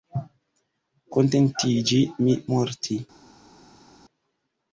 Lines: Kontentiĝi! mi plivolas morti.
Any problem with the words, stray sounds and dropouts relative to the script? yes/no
yes